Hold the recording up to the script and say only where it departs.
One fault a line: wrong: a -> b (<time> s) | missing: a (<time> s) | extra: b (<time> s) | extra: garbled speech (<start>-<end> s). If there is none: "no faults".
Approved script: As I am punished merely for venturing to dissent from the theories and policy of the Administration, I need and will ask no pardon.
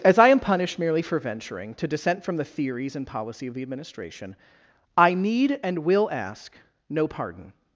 no faults